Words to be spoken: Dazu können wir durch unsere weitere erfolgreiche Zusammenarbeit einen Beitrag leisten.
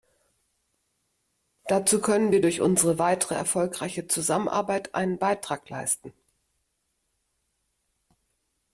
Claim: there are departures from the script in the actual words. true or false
false